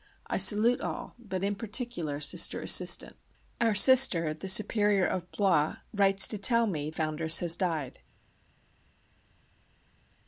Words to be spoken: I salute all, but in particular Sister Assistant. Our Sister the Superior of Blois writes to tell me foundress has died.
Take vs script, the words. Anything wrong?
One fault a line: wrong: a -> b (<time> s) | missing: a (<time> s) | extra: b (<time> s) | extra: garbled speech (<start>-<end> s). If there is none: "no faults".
no faults